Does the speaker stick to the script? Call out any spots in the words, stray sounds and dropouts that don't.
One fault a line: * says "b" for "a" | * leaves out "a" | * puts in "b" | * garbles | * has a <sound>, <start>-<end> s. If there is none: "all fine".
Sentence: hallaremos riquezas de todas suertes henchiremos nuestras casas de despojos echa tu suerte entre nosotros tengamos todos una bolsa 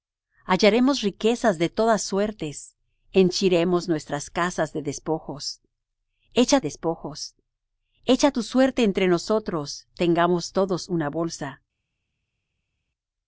* puts in "despojos echa"